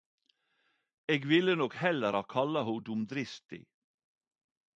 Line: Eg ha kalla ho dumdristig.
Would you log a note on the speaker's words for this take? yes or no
yes